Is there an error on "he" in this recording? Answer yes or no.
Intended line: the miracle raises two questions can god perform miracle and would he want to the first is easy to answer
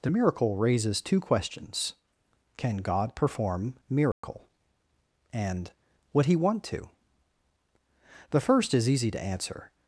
no